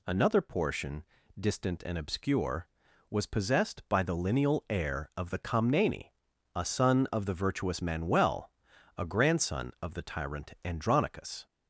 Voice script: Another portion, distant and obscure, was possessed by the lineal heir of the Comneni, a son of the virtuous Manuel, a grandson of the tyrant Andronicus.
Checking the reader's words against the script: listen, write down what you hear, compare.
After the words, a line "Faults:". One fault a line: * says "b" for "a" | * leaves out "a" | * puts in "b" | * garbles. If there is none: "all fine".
Another portion, distant and obscure, was possessed by the lineal heir of the Comneni, a son of the virtuous Manuel, a grandson of the tyrant Andronicus.
Faults:
all fine